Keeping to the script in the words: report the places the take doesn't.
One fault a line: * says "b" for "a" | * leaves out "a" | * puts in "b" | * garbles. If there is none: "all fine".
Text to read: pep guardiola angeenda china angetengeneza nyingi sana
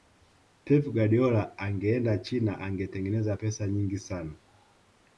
* puts in "pesa"